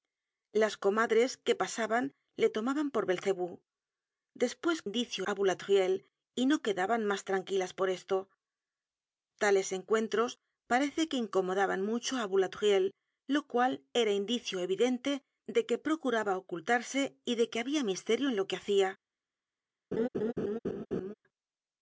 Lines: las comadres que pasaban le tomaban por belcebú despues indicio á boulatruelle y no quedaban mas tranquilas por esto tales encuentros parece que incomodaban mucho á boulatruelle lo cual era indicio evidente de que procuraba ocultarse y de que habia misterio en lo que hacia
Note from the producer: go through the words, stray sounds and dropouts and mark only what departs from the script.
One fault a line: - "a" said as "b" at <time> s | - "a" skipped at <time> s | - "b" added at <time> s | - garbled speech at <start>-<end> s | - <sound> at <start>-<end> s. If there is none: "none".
- laugh at 19.9-21.1 s